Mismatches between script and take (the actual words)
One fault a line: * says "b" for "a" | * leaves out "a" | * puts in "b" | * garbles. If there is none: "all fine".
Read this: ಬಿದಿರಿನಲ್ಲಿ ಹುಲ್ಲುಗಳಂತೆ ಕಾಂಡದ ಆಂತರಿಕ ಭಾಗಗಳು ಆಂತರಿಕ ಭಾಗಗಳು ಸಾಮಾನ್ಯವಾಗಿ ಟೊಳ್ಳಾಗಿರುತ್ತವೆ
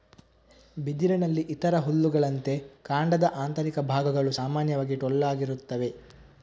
* puts in "ಇತರ"
* leaves out "ಆಂತರಿಕ ಭಾಗಗಳು"